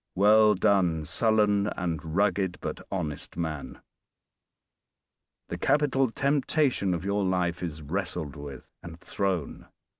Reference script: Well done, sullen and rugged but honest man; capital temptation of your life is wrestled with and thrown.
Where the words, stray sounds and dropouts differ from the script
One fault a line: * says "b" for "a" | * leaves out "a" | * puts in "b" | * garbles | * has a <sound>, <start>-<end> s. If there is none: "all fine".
* puts in "the"